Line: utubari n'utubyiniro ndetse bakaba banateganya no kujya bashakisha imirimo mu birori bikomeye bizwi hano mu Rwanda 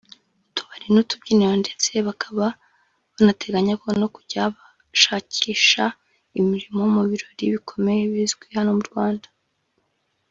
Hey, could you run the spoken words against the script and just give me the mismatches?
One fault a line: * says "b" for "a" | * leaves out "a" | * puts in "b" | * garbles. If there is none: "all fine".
all fine